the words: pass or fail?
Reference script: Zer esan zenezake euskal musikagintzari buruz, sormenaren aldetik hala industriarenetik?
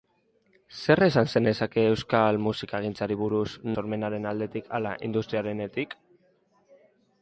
pass